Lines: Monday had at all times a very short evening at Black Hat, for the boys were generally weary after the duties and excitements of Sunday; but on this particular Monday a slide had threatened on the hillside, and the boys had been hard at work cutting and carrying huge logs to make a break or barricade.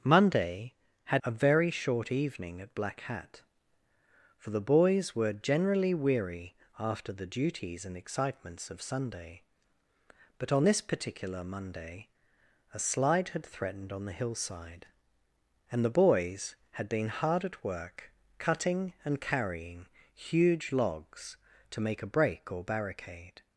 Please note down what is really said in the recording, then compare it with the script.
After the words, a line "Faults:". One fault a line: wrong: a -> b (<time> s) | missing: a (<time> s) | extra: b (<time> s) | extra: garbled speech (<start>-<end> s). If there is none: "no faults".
Monday had a very short evening at Black Hat, for the boys were generally weary after the duties and excitements of Sunday; but on this particular Monday a slide had threatened on the hillside, and the boys had been hard at work cutting and carrying huge logs to make a break or barricade.
Faults:
missing: at all times (1.2 s)